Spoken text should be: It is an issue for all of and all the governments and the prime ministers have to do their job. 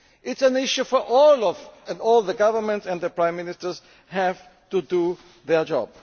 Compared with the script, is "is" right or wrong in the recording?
right